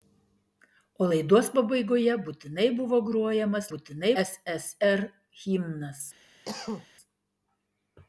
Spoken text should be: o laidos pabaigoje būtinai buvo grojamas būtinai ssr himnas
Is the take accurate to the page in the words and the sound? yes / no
no